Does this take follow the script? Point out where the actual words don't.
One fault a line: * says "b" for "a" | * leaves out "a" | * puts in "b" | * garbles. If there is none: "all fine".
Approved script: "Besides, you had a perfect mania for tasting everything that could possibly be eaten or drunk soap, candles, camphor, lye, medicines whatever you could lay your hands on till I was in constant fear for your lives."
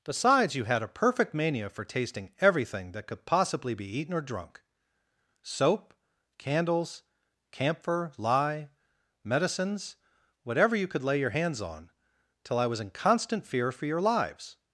all fine